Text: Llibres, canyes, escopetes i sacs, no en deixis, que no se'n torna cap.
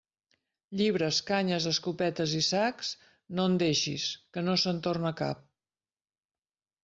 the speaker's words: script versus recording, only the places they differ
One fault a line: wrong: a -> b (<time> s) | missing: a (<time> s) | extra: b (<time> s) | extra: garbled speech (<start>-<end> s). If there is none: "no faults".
no faults